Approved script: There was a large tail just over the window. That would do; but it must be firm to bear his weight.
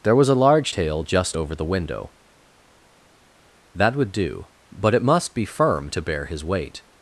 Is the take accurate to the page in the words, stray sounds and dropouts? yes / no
yes